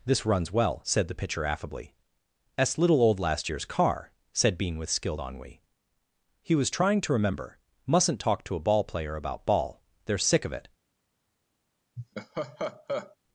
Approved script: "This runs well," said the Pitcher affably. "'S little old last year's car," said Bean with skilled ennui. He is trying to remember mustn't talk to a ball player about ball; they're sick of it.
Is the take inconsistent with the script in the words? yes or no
yes